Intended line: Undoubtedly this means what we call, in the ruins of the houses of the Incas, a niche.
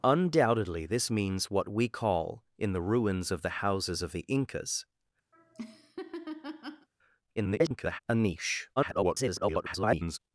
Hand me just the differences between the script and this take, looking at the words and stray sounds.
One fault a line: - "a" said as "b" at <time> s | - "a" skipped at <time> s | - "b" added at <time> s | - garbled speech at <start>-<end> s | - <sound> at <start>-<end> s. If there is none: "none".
- laugh at 5.3-6.9 s
- garbled speech at 7.3-8.0 s
- garbled speech at 8.8-10.2 s